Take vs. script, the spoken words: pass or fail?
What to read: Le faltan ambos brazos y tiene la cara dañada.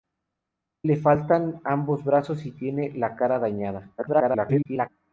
fail